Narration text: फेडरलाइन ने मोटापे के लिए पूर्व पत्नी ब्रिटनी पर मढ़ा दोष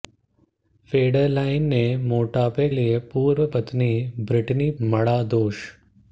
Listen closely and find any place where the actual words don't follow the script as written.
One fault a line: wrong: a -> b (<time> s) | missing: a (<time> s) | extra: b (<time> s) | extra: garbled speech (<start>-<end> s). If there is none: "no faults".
missing: के (2.7 s)
missing: पर (4.7 s)